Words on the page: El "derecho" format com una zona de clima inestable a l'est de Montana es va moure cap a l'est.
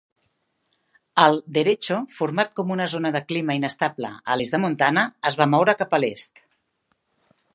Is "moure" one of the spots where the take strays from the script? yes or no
no